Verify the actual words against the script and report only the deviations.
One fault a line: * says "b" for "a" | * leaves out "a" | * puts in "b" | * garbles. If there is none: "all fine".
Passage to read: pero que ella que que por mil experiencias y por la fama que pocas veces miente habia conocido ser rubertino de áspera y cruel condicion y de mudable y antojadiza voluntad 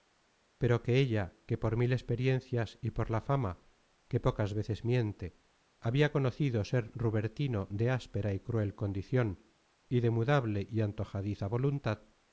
* leaves out "que"